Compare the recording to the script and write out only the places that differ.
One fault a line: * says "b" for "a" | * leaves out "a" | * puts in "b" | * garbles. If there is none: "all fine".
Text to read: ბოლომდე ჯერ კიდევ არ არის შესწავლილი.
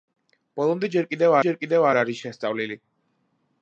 * puts in "ჯერ კიდევ"